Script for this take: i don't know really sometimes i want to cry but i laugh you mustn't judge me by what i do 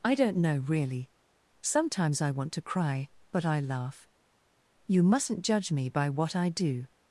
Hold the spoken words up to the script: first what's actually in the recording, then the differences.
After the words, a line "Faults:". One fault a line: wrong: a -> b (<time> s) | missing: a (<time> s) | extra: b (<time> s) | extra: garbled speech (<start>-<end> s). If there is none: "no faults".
i don't know really sometimes i want to cry but i laugh you mustn't judge me by what i do
Faults:
no faults